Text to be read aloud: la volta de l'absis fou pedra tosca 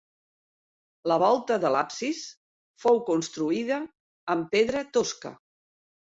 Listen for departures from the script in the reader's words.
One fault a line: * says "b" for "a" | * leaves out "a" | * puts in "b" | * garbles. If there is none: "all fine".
* puts in "construïda amb"